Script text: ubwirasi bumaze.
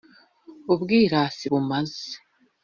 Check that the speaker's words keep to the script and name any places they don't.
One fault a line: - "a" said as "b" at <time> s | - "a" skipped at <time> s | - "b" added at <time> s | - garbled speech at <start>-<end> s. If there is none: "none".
none